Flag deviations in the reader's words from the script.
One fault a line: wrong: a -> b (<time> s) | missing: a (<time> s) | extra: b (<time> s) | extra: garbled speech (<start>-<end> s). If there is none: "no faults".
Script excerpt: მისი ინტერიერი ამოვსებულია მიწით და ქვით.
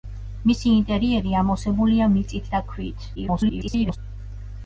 extra: garbled speech (3.1-4.0 s)